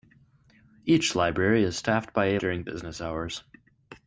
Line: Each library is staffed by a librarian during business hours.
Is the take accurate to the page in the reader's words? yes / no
no